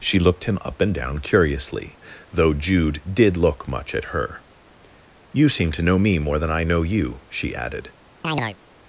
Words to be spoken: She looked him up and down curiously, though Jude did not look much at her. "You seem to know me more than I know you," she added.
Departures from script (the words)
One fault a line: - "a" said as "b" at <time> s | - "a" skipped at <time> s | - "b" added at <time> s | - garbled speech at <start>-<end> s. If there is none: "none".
- "not" skipped at 3.4 s